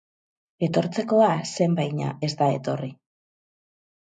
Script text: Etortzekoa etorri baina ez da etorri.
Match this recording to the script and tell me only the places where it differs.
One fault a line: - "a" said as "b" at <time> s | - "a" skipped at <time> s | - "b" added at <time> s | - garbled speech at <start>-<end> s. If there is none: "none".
- "etorri" said as "zen" at 1.6 s